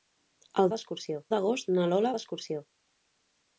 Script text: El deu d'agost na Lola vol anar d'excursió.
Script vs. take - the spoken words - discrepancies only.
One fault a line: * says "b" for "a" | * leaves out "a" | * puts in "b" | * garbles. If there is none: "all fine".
* says "d'excursió" for "deu"
* leaves out "vol anar"